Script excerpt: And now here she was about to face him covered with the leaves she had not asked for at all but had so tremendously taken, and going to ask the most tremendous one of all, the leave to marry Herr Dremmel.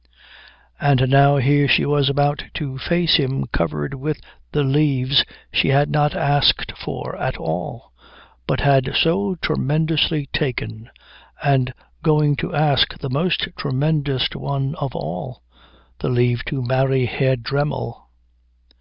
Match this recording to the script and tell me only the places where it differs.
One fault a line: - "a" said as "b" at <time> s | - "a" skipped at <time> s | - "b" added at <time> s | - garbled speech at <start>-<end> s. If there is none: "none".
none